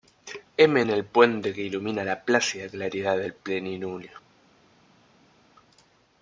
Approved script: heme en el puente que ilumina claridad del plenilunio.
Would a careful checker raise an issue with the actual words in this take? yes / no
yes